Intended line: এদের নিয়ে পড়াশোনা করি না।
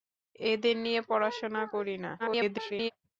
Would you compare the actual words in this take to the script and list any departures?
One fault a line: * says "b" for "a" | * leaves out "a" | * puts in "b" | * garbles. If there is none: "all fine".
* garbles